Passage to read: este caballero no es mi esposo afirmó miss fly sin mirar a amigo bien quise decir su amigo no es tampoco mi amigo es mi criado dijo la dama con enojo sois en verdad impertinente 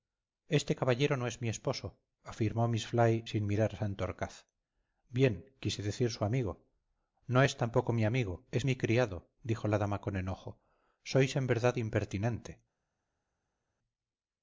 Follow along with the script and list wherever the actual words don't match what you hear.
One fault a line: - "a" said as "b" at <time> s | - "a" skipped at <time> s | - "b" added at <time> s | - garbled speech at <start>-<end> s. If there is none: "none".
- "amigo" said as "santorcaz" at 3.8 s